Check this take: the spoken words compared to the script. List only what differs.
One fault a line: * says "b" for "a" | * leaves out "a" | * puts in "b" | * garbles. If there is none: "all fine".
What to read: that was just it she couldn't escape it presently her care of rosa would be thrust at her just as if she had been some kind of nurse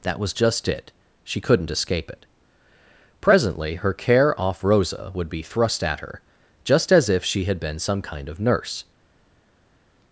* says "off" for "of"